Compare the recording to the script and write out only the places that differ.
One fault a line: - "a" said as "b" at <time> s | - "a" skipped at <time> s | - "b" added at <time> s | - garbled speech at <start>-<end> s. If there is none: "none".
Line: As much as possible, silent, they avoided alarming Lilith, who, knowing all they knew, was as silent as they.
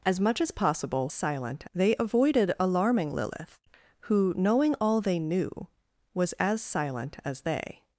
none